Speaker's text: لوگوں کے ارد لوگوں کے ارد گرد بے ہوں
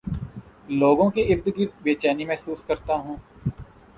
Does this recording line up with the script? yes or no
no